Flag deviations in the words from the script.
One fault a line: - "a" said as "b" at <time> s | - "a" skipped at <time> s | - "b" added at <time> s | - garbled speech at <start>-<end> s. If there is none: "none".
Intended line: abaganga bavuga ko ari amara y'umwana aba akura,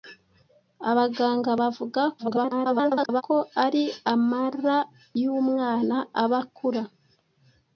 - garbled speech at 2.2-3.2 s